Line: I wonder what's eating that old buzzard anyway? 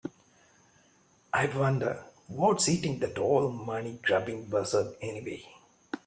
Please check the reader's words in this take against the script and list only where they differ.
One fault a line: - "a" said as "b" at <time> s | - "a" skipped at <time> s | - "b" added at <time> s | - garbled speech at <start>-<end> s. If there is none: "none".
- "money grubbing" added at 3.5 s